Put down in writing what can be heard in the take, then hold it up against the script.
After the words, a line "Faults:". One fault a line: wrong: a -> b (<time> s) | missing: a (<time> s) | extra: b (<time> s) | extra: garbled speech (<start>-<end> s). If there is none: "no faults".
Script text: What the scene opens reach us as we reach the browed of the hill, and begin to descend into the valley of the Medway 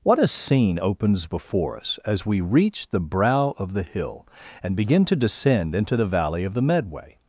What a scene opens before us as we reach the brow of the hill, and begin to descend into the valley of the Medway
Faults:
wrong: the -> a (0.2 s)
wrong: reach -> before (1.2 s)
wrong: browed -> brow (3.0 s)